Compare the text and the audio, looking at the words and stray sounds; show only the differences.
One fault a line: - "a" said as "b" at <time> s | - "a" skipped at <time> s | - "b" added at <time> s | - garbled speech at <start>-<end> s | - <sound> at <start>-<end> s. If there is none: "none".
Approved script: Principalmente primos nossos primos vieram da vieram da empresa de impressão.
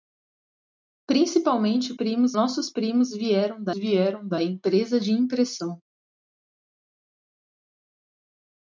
none